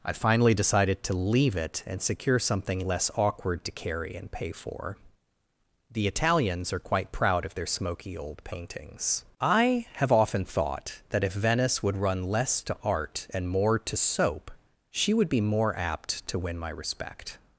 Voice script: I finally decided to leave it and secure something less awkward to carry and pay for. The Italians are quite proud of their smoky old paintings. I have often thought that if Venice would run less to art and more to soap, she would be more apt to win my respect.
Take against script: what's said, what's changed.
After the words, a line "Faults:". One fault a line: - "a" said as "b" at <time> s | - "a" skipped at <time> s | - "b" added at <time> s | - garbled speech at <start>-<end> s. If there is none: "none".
I finally decided to leave it and secure something less awkward to carry and pay for. The Italians are quite proud of their smoky old paintings. I have often thought that if Venice would run less to art and more to soap, she would be more apt to win my respect.
Faults:
none